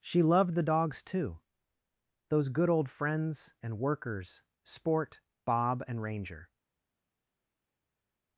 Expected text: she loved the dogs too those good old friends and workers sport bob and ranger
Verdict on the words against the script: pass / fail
pass